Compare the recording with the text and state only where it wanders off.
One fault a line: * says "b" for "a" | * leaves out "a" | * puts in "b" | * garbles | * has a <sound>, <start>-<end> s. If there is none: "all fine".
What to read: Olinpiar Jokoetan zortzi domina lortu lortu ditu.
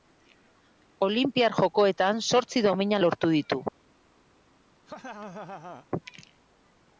* leaves out "lortu"
* has a laugh, 4.9-5.9 s